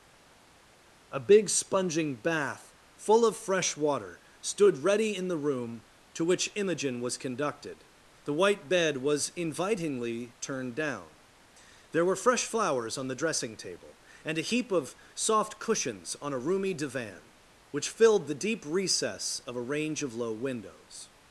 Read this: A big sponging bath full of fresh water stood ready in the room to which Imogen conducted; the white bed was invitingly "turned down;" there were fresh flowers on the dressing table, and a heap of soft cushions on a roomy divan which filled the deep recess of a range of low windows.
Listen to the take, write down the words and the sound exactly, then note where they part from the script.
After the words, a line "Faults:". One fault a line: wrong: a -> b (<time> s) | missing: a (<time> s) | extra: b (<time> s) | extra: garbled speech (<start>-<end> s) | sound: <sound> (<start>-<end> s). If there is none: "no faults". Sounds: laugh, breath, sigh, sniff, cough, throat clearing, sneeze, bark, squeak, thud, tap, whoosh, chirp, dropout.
A big sponging bath full of fresh water stood ready in the room to which Imogen was conducted; the white bed was invitingly "turned down;" there were fresh flowers on the dressing table, and a heap of soft cushions on a roomy divan which filled the deep recess of a range of low windows.
Faults:
extra: was (7.0 s)